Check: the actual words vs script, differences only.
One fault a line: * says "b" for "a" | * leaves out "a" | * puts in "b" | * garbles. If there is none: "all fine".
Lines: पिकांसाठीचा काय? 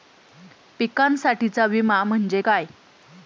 * puts in "विमा म्हणजे"